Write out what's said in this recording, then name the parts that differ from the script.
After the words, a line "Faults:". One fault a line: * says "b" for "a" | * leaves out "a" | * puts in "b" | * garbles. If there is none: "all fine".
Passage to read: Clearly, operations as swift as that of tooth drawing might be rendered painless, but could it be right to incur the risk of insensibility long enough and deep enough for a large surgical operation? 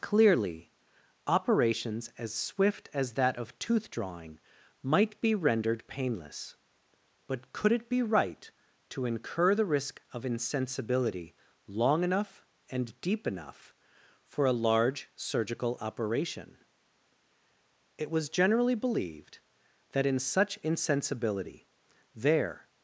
Clearly, operations as swift as that of tooth drawing might be rendered painless, but could it be right to incur the risk of insensibility long enough and deep enough for a large surgical operation? It was generally believed that in such insensibility there
Faults:
* puts in "It was generally believed that in such insensibility there"